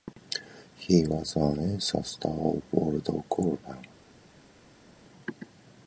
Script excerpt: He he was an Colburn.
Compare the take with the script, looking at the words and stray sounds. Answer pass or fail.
fail